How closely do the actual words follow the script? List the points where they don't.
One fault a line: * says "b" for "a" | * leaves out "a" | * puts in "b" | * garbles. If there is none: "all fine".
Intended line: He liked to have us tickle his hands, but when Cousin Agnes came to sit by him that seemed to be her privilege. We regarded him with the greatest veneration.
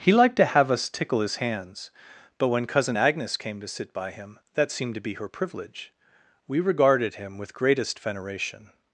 * leaves out "the"